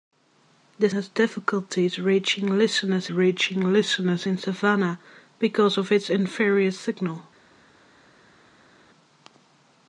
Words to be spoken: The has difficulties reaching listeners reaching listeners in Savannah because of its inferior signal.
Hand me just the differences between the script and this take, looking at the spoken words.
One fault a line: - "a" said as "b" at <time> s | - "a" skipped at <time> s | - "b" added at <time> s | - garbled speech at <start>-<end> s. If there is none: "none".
none